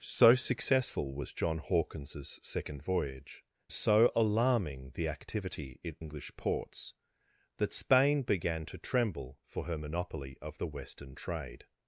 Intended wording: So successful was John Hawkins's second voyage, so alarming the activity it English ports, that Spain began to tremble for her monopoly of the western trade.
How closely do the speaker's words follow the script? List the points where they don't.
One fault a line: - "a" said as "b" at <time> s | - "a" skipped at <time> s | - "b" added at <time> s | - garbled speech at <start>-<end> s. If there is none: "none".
none